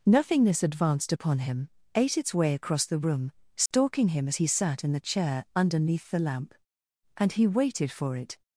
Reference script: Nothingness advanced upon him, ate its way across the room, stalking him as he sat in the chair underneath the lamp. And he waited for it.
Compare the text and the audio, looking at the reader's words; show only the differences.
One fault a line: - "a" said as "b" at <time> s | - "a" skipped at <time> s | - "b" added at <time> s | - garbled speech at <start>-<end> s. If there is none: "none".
none